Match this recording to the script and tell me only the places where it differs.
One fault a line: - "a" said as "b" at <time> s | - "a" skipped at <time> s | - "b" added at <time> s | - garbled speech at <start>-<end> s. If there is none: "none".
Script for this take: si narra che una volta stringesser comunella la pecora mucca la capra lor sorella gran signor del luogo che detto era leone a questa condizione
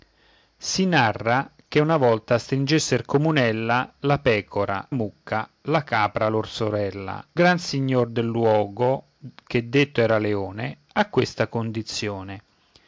none